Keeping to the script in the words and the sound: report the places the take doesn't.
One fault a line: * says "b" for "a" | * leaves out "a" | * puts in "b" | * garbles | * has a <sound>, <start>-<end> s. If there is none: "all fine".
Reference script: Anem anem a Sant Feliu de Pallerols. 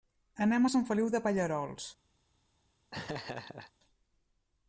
* leaves out "anem"
* has a laugh, 2.9-3.7 s